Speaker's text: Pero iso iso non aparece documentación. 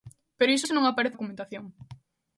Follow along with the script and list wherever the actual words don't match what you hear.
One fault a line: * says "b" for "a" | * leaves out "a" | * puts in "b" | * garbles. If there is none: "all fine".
all fine